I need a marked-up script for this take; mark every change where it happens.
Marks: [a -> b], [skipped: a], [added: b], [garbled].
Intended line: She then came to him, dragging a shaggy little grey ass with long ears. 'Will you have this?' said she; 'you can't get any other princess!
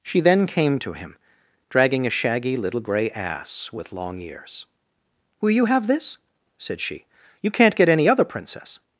She then came to him, dragging a shaggy little grey ass with long ears. 'Will you have this?' said she; 'you can't get any other princess!